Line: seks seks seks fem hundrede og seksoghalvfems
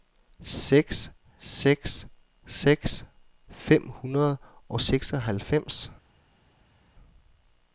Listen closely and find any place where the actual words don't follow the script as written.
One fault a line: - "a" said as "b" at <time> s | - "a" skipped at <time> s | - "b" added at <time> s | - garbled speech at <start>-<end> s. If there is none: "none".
none